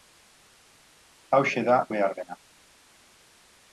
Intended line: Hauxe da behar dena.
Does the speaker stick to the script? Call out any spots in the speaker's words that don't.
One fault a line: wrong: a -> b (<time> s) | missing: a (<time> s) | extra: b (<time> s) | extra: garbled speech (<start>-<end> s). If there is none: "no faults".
no faults